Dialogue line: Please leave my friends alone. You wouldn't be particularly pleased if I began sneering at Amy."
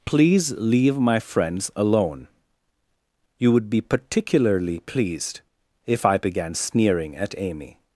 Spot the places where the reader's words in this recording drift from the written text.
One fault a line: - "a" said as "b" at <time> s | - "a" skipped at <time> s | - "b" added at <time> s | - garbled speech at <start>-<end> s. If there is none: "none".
- "wouldn't" said as "would" at 3.5 s